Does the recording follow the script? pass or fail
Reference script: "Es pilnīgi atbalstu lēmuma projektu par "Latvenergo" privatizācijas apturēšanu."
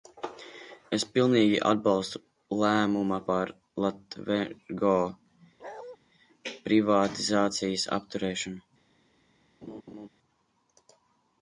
fail